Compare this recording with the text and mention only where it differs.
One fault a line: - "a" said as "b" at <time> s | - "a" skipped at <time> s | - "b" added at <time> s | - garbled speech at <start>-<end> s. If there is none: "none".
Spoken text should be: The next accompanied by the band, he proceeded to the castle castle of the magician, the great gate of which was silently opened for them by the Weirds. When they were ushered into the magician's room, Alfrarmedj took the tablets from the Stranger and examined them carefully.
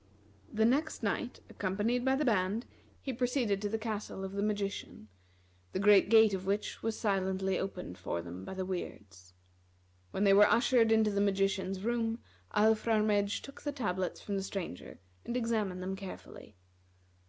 - "night" added at 1.0 s
- "castle" skipped at 4.2 s